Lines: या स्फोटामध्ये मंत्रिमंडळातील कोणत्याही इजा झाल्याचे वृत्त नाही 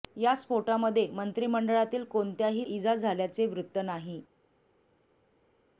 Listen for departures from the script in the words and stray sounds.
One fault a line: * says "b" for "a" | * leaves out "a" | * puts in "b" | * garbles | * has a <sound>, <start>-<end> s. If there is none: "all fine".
all fine